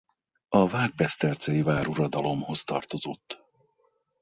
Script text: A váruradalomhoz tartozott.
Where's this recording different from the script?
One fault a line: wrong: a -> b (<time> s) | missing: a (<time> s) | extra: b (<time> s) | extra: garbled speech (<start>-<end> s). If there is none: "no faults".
extra: vágbesztercei (0.7 s)